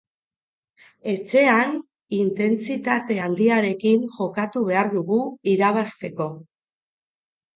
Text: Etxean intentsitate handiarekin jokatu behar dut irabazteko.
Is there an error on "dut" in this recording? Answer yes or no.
yes